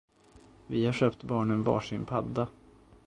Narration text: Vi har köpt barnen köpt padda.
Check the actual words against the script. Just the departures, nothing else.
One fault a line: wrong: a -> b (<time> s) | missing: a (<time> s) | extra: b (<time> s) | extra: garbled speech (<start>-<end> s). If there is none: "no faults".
wrong: köpt -> varsin (1.6 s)